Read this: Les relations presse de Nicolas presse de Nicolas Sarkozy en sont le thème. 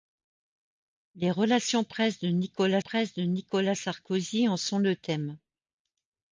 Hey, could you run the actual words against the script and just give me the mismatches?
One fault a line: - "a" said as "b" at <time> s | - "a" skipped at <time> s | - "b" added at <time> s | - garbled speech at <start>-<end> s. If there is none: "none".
none